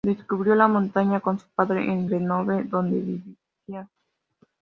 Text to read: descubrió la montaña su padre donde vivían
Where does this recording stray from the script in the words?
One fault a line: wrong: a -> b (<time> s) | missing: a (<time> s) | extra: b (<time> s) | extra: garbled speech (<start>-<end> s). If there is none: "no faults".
extra: con (1.2 s)
extra: en grenoble (1.8 s)